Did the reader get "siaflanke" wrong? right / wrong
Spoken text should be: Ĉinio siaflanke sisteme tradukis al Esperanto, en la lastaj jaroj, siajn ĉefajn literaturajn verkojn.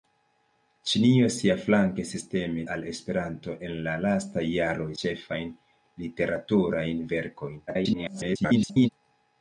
right